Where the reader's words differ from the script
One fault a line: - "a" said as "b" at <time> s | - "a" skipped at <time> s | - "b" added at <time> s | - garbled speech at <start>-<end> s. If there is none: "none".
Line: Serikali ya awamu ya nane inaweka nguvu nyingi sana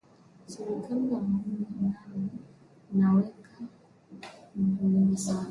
none